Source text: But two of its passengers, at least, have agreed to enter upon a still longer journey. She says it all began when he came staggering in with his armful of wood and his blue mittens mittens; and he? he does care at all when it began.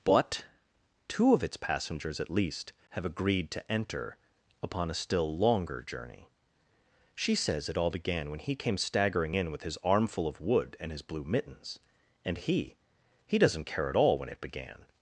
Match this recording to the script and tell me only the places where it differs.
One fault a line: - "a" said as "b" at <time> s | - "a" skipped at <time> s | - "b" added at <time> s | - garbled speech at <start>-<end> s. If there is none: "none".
- "mittens" skipped at 11.8 s
- "does" said as "doesn't" at 13.4 s